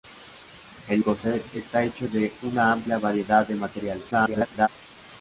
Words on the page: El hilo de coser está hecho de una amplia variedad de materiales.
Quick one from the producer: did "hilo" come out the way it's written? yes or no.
no